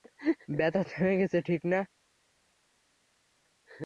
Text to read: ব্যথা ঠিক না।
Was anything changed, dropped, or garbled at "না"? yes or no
no